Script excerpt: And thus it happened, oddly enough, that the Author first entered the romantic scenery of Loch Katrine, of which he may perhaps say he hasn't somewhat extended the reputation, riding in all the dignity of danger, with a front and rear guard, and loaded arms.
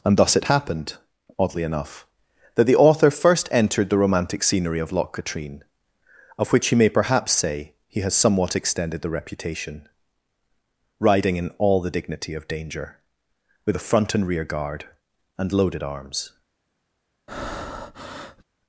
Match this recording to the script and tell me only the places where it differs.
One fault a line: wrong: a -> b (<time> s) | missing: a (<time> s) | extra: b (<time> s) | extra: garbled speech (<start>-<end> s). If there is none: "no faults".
wrong: hasn't -> has (8.0 s)